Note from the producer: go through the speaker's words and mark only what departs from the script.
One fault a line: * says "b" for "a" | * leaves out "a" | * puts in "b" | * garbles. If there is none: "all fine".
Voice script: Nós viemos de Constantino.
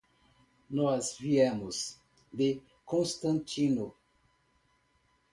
all fine